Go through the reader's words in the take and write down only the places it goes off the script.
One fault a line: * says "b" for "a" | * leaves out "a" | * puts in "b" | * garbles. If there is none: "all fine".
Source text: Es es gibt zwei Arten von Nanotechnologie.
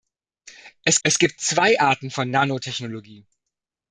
all fine